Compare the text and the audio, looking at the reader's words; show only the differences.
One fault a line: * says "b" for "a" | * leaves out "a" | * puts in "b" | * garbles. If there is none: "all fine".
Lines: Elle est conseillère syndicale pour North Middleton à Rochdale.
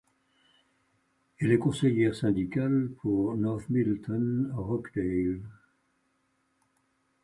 * leaves out "à"